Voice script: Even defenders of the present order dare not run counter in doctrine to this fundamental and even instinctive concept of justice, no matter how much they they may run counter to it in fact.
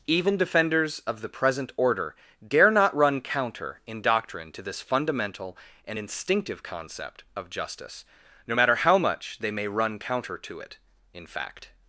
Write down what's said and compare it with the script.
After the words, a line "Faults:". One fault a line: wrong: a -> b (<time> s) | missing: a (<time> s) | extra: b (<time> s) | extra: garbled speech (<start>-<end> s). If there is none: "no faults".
Even defenders of the present order dare not run counter in doctrine to this fundamental and instinctive concept of justice, no matter how much they may run counter to it in fact.
Faults:
missing: even (6.0 s)
missing: they (9.5 s)